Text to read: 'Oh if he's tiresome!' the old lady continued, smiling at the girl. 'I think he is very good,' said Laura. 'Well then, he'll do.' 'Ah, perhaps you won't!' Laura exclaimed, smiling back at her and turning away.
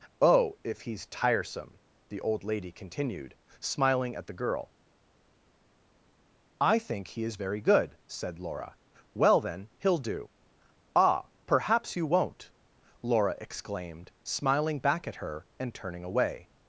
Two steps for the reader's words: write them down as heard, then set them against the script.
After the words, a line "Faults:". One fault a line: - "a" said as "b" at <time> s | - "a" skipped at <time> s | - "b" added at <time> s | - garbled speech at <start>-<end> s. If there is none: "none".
'Oh if he's tiresome!' the old lady continued, smiling at the girl. 'I think he is very good,' said Laura. 'Well then, he'll do.' 'Ah, perhaps you won't!' Laura exclaimed, smiling back at her and turning away.
Faults:
none